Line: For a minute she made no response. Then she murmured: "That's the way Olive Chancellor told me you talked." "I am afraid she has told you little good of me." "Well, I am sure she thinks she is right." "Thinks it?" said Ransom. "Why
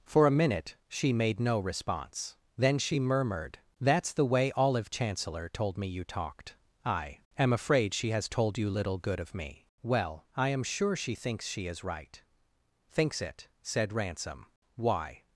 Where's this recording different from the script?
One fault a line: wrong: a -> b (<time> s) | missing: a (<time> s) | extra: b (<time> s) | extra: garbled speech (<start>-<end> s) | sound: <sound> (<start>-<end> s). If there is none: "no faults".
no faults